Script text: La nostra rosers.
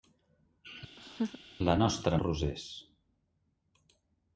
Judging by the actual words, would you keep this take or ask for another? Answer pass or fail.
pass